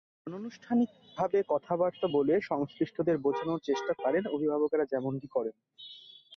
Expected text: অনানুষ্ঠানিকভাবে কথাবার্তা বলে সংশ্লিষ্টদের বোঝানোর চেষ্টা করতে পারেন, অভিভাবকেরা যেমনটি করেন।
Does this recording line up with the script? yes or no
no